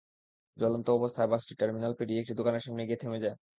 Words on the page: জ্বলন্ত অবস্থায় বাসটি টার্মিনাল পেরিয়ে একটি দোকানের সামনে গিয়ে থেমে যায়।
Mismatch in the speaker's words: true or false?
false